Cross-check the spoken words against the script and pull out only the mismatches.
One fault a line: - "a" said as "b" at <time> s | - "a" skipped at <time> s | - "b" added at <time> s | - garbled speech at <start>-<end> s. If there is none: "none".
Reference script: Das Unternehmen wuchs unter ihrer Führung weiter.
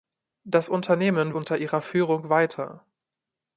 - "wuchs" skipped at 1.4 s